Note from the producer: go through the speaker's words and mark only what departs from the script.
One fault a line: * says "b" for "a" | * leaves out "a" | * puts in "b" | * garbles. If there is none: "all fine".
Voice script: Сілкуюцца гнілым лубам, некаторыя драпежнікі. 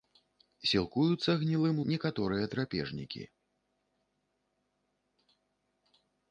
* leaves out "лубам"